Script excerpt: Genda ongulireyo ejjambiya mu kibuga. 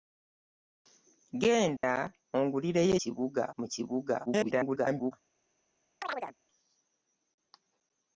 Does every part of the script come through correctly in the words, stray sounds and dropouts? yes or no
no